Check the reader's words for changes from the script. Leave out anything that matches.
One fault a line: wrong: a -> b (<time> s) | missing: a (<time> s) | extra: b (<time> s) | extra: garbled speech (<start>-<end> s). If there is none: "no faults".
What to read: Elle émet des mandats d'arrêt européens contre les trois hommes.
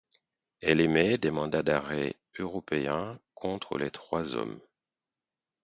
no faults